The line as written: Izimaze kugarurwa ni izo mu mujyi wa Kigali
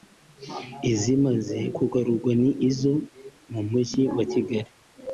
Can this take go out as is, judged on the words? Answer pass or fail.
pass